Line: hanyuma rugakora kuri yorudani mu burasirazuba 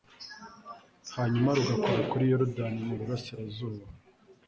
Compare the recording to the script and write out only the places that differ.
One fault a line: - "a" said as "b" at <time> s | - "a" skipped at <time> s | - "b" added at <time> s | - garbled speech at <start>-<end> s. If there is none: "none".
none